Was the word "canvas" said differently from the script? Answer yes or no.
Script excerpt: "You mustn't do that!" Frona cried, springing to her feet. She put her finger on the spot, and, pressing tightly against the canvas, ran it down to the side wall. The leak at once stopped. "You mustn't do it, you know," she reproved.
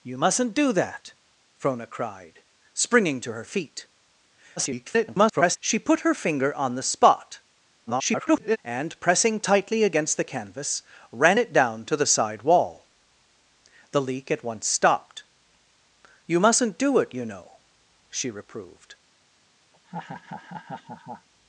no